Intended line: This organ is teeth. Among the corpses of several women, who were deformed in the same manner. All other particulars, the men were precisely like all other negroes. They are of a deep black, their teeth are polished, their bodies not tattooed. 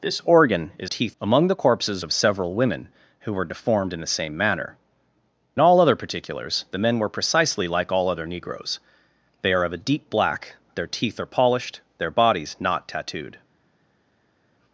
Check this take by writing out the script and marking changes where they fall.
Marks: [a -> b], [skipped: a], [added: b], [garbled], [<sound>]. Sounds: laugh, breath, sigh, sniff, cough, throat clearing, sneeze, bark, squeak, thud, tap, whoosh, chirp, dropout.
This organ is teeth. Among the corpses of several women, who were deformed in the same manner. All other particulars, the men were precisely like all other negroes. They are of a deep black, their teeth are polished, their bodies not tattooed.